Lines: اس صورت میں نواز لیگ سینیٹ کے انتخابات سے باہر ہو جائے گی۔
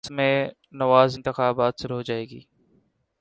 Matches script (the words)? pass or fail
fail